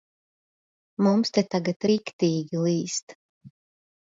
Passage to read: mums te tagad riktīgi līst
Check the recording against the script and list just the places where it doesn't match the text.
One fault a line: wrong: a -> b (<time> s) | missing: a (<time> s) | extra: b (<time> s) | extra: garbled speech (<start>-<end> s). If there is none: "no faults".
no faults